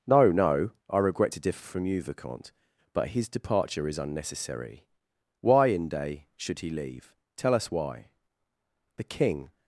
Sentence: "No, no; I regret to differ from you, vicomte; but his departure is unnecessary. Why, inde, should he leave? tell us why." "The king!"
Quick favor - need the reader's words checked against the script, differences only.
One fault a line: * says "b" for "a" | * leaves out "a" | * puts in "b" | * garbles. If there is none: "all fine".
all fine